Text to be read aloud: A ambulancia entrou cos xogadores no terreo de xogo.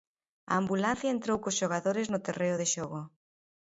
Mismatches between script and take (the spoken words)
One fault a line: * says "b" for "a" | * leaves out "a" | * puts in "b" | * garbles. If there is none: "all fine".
all fine